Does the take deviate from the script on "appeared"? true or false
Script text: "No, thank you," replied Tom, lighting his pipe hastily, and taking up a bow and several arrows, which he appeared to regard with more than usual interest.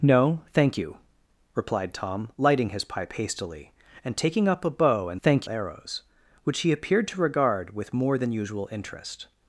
false